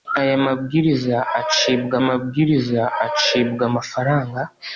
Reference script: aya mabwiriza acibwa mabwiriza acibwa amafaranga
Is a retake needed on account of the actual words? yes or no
no